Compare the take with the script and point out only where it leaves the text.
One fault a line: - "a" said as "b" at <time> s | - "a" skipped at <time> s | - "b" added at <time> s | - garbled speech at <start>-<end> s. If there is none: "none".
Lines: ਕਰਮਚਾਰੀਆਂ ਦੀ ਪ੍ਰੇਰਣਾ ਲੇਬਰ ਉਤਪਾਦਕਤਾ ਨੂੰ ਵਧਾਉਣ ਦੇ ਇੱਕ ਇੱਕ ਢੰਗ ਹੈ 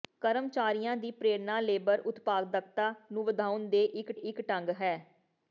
none